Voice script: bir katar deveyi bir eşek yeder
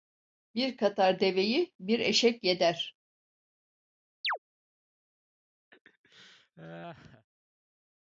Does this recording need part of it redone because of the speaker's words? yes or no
no